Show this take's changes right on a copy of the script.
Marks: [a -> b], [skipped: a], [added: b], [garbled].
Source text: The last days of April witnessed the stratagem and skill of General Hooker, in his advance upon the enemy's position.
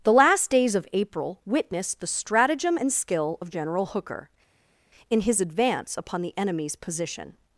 The last days of April witnessed the stratagem and skill of General Hooker, in his advance upon the enemy's position.